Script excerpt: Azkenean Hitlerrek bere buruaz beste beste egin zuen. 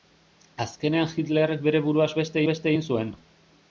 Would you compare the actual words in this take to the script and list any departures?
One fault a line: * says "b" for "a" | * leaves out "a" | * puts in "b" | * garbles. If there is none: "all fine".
all fine